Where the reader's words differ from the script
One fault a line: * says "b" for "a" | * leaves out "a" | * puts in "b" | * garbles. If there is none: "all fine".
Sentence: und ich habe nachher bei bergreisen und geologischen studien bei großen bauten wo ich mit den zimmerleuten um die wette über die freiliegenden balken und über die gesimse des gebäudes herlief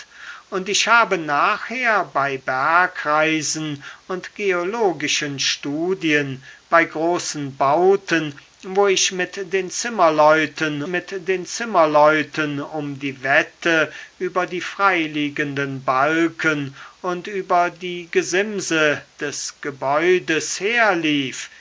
* puts in "mit den zimmerleuten"